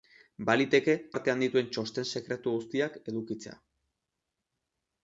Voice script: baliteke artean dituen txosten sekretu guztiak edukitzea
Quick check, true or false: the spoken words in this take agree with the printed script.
true